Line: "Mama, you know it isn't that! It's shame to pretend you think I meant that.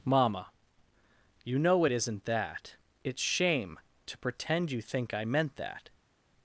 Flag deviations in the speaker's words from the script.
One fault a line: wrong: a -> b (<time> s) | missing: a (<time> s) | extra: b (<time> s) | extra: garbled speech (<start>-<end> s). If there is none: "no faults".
no faults